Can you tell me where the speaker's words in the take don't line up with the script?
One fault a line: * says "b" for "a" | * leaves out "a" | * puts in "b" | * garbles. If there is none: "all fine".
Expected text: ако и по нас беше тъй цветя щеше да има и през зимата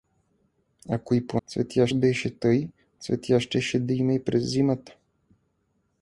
* says "цветя" for "нас"